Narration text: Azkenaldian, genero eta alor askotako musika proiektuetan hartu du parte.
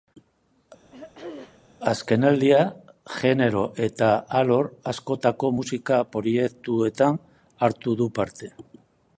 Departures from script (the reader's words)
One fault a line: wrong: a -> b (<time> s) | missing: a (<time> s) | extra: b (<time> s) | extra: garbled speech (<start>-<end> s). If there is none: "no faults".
no faults